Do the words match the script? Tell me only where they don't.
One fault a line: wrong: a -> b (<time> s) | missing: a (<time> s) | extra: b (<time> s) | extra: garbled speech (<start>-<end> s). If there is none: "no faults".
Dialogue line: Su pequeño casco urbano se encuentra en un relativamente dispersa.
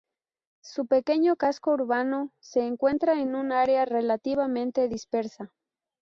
extra: área (3.5 s)